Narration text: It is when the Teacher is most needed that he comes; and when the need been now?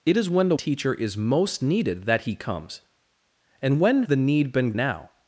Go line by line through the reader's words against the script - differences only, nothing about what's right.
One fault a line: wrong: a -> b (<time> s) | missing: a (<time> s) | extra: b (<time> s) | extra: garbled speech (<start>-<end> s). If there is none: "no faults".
no faults